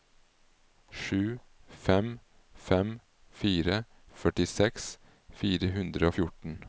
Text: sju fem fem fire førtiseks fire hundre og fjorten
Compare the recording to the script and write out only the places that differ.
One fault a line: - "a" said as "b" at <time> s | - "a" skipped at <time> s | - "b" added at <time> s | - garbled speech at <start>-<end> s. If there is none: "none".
none